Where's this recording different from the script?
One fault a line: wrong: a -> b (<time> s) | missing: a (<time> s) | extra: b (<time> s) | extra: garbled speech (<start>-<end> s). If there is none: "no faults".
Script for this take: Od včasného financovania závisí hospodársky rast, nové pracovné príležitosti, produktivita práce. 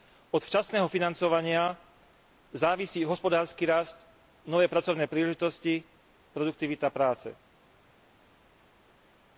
no faults